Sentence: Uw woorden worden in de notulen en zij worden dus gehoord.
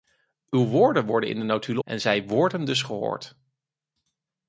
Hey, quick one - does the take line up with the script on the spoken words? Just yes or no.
yes